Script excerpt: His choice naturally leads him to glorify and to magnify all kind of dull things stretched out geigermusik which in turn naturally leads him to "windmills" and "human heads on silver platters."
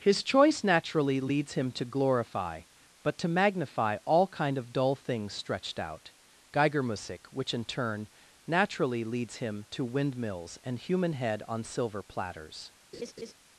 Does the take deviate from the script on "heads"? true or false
true